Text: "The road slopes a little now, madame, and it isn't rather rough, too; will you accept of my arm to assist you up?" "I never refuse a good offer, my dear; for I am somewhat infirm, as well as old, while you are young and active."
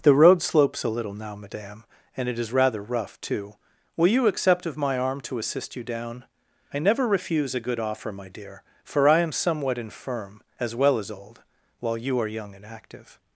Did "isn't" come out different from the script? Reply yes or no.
yes